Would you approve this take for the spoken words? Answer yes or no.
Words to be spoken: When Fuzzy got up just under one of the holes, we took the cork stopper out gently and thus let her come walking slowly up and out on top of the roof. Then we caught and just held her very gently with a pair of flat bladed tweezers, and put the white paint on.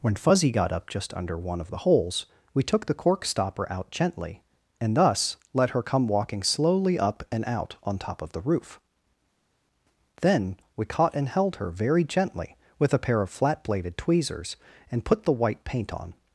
no